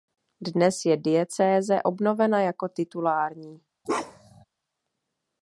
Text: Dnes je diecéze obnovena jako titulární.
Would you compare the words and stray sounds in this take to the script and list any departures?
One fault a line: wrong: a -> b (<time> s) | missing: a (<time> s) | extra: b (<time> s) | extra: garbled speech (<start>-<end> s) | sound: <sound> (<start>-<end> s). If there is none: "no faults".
sound: bark (3.8-4.4 s)